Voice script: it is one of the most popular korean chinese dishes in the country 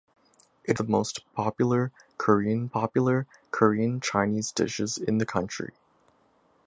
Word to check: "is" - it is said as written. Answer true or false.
false